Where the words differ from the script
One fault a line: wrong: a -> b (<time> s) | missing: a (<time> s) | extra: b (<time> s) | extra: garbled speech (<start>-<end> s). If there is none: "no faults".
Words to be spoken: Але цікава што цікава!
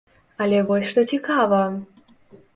wrong: цікава -> вось (0.7 s)